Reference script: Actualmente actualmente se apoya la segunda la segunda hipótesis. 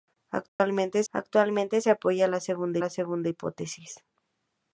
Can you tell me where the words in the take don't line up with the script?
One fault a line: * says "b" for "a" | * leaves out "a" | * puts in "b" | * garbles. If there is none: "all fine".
all fine